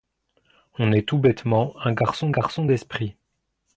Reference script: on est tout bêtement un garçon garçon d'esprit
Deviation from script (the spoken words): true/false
false